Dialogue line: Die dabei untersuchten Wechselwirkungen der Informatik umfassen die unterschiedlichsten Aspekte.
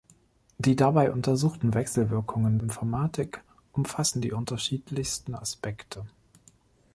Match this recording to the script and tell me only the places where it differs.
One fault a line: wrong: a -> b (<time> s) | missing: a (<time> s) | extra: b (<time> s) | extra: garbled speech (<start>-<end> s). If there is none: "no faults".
missing: der (2.6 s)